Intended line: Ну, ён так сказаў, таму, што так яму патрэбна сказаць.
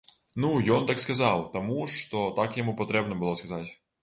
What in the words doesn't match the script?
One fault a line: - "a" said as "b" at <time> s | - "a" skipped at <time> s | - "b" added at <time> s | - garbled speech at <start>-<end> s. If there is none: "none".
- "было" added at 3.2 s